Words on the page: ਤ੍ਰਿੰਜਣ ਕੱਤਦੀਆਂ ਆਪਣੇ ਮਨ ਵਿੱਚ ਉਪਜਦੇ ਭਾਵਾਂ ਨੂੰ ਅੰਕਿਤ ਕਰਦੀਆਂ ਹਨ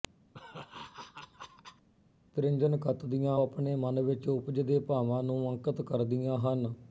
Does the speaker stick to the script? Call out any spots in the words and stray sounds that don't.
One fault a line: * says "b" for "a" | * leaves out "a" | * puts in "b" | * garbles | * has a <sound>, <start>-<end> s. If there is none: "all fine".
* has a laugh, 0.3-1.9 s